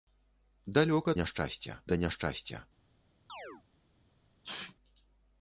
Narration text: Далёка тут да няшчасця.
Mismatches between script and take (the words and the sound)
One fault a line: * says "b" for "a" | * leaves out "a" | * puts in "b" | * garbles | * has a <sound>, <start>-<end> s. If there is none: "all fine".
* says "няшчасця" for "тут"
* has a chirp, 3.3-3.6 s
* has a sneeze, 4.4-4.7 s